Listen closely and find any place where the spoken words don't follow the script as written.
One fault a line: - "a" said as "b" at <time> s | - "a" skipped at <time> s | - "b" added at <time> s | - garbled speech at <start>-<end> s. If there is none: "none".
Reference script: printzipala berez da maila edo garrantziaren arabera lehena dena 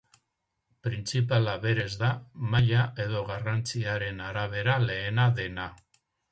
none